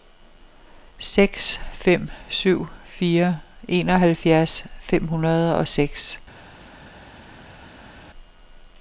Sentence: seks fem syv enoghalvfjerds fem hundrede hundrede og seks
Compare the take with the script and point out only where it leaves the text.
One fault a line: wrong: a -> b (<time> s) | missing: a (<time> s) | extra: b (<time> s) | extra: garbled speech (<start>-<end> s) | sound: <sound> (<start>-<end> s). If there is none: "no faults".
extra: fire (2.8 s)
missing: hundrede (5.6 s)